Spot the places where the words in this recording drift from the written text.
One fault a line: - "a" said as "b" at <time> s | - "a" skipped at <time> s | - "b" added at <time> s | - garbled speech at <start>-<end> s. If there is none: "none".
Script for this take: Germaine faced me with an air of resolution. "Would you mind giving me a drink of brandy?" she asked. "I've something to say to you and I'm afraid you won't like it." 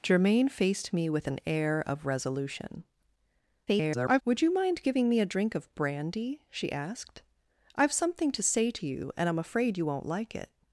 - garbled speech at 3.7-4.2 s